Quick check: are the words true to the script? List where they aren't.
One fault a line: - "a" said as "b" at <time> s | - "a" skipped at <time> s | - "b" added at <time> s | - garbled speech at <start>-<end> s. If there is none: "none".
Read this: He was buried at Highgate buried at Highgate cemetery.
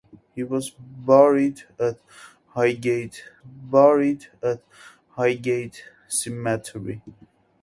none